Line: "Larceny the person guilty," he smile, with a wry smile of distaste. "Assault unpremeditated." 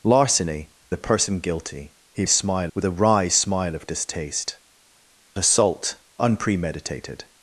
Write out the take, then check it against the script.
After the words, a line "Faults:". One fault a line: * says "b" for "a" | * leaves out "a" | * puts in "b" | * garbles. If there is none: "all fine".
"Larceny the person guilty," he smile, with a wry smile of distaste. "Assault unpremeditated."
Faults:
all fine